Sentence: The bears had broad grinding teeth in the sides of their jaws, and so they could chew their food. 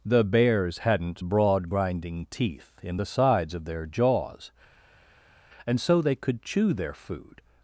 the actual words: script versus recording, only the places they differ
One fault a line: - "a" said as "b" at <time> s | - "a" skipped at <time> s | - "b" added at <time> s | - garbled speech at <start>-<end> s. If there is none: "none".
- "had" said as "hadn't" at 0.8 s